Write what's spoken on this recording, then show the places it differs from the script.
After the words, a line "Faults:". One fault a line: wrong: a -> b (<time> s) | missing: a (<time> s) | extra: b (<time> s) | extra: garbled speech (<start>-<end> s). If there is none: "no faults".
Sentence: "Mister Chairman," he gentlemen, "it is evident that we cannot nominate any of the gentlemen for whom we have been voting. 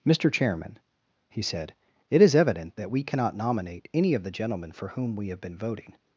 "Mister Chairman," he said, "it is evident that we cannot nominate any of the gentlemen for whom we have been voting.
Faults:
wrong: gentlemen -> said (1.4 s)